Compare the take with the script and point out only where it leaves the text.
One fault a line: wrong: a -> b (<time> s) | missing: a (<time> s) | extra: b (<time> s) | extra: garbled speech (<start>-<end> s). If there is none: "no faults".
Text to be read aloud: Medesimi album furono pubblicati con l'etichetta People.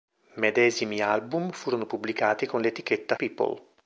no faults